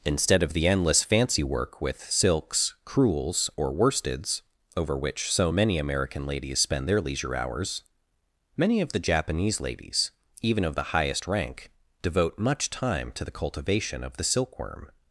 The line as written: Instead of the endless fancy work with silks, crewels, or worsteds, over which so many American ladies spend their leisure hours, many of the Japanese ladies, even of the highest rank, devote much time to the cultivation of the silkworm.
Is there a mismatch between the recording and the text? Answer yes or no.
no